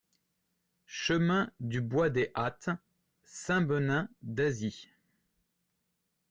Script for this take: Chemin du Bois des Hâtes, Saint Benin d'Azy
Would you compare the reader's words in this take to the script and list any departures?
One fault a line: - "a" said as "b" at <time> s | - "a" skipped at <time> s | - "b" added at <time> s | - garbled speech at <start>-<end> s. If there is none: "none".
none